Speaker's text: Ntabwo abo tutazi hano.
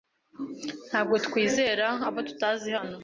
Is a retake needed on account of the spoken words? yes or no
yes